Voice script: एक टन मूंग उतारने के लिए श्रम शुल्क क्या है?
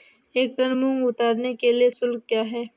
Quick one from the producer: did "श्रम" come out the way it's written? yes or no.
no